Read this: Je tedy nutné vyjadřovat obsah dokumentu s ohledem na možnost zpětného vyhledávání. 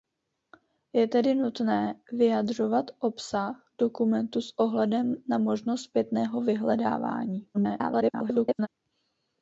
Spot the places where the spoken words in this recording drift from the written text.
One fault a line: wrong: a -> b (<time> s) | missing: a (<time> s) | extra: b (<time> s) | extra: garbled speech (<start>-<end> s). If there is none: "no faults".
extra: garbled speech (7.5-8.7 s)